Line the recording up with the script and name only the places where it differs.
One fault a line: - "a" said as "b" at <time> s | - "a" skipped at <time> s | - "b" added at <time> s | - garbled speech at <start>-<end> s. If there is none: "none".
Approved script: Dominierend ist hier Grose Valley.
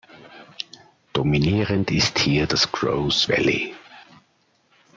- "das" added at 2.5 s